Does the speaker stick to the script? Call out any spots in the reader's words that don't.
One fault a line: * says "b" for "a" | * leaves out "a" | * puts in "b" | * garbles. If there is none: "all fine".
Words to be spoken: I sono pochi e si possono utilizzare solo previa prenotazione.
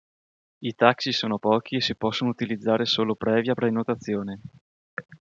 * puts in "taxi"